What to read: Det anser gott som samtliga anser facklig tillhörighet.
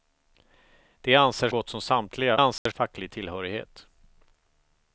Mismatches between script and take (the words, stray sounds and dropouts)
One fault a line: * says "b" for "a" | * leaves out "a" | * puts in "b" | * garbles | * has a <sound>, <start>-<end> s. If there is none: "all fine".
* has a dropout, 2.6-2.7 s